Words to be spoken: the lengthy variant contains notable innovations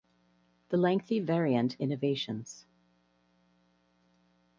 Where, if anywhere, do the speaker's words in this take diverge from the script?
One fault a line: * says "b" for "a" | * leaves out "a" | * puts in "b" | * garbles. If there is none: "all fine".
* leaves out "contains notable"